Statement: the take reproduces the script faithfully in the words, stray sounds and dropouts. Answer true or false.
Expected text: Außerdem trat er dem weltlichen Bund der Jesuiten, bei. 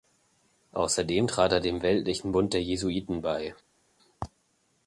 true